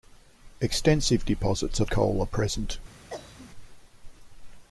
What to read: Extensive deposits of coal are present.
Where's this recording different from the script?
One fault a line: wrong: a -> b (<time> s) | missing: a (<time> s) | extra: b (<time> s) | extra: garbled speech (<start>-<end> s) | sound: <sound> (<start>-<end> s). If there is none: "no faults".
sound: cough (3.1-3.5 s)